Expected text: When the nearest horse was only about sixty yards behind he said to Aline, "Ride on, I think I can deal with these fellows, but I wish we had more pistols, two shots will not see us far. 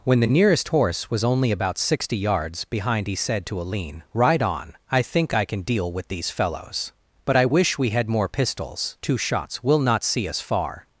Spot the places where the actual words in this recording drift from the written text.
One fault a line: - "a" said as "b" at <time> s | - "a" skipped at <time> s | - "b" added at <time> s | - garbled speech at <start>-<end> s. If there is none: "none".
none